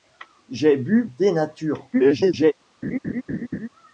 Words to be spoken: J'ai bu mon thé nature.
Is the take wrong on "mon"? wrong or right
wrong